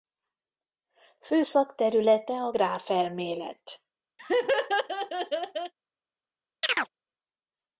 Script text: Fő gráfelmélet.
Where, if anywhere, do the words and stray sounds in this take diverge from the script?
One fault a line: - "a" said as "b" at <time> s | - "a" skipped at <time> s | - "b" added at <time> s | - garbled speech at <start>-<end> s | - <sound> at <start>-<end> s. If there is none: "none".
- "szakterülete a" added at 1.4 s
- laugh at 4.2-5.7 s
- chirp at 6.6-6.9 s